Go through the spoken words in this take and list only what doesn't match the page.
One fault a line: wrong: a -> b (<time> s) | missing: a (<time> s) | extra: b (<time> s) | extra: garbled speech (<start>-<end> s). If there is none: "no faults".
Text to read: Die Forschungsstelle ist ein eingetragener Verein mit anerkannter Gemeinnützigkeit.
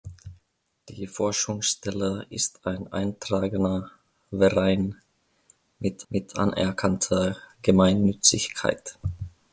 extra: mit (6.1 s)